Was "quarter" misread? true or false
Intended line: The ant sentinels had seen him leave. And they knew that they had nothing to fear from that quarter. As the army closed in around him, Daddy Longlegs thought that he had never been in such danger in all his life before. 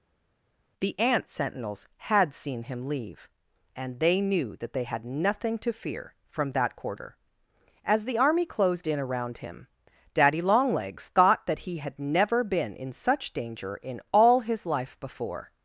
false